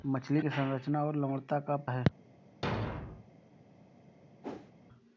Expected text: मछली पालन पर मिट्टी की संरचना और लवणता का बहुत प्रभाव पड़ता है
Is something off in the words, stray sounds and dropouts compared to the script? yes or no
yes